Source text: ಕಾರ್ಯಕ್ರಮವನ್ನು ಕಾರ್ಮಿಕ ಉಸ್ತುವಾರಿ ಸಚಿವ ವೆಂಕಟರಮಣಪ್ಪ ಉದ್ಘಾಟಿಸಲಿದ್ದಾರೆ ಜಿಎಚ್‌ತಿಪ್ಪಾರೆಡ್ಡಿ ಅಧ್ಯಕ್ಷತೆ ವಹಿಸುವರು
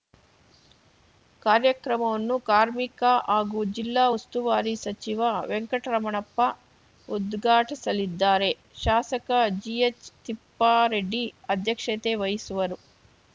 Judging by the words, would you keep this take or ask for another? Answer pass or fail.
fail